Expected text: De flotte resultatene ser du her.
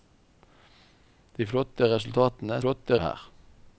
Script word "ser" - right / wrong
wrong